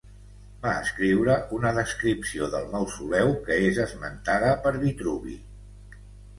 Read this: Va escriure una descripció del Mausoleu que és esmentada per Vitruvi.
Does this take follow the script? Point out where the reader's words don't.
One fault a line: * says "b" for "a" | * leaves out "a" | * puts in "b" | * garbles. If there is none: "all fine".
all fine